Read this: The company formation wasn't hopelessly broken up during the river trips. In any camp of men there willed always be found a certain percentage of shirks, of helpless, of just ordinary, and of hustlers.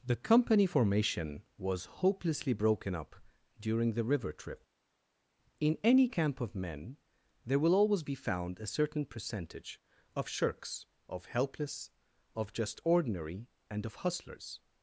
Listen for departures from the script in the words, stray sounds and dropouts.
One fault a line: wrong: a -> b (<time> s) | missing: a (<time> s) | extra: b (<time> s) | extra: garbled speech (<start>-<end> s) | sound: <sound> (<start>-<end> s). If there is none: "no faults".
wrong: wasn't -> was (1.6 s)
wrong: trips -> trip (4.3 s)
wrong: willed -> will (7.6 s)